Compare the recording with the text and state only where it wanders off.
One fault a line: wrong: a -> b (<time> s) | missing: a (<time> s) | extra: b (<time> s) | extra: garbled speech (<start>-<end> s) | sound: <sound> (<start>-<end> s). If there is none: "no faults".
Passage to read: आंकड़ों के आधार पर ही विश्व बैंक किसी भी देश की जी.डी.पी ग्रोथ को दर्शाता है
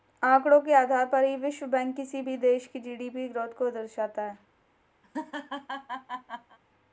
sound: laugh (5.0-6.6 s)